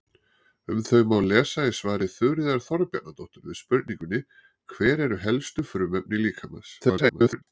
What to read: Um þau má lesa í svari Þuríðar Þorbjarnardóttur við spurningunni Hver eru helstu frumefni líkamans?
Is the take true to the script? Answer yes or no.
no